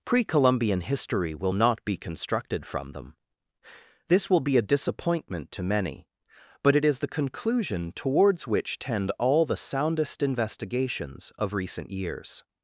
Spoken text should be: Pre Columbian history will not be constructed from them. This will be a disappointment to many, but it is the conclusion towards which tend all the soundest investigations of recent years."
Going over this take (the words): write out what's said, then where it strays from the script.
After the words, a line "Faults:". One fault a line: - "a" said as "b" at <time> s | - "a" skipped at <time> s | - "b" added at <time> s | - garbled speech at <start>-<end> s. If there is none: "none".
Pre Columbian history will not be constructed from them. This will be a disappointment to many, but it is the conclusion towards which tend all the soundest investigations of recent years."
Faults:
none